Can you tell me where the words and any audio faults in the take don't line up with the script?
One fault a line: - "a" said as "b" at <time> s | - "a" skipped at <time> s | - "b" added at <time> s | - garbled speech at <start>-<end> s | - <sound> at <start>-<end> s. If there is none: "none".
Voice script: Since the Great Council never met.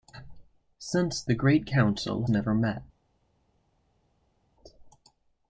none